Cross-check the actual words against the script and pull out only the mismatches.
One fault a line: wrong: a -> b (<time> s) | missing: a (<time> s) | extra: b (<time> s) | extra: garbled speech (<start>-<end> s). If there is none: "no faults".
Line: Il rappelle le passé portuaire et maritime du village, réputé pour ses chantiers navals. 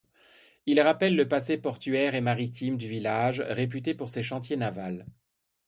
no faults